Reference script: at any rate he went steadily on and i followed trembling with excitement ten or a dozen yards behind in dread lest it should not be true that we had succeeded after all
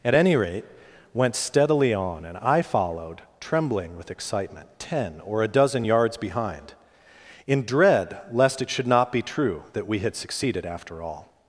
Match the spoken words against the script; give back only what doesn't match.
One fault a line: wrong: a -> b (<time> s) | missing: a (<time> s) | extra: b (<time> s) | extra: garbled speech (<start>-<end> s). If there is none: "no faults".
missing: he (0.7 s)